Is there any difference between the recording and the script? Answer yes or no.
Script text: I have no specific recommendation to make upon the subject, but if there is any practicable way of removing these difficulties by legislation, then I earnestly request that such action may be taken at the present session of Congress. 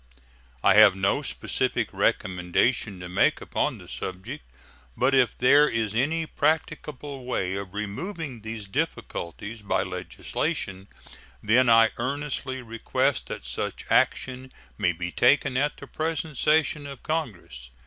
no